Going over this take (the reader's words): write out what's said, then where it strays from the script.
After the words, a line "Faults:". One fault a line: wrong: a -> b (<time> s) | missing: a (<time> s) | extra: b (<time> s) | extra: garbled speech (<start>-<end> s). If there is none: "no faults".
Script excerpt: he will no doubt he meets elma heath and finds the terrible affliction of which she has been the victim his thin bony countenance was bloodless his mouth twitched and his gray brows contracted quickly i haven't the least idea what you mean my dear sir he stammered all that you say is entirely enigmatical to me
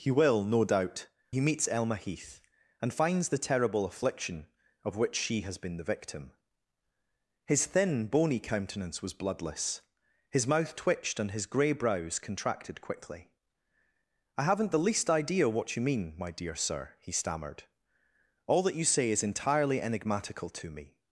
he will no doubt he meets elma heath and finds the terrible affliction of which she has been the victim his thin bony countenance was bloodless his mouth twitched and his gray brows contracted quickly i haven't the least idea what you mean my dear sir he stammered all that you say is entirely enigmatical to me
Faults:
no faults